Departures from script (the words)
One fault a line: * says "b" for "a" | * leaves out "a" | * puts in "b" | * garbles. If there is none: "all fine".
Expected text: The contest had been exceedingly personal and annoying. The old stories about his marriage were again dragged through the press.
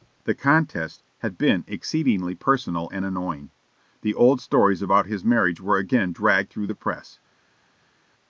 all fine